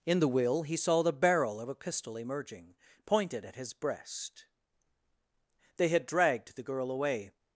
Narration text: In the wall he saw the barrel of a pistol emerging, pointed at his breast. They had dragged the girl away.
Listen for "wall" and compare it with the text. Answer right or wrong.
wrong